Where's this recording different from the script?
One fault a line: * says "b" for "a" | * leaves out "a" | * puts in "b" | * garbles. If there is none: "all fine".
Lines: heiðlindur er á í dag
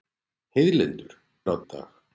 all fine